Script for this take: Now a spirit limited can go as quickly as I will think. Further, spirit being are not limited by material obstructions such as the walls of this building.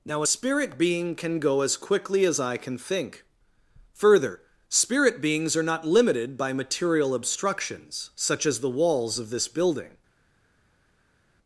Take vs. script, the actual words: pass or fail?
fail